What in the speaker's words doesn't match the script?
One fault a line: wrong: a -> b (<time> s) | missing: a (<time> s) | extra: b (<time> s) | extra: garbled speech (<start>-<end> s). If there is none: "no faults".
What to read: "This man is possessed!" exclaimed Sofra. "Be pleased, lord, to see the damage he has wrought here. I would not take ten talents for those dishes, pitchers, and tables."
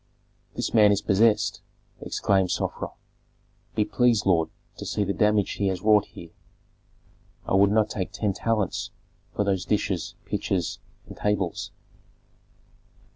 no faults